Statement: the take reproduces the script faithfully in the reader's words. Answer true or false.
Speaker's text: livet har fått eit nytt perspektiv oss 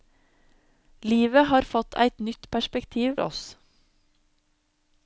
true